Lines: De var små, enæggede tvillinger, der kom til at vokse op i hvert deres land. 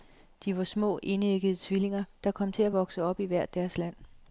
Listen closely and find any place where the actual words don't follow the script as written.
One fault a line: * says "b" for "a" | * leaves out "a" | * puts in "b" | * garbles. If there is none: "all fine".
all fine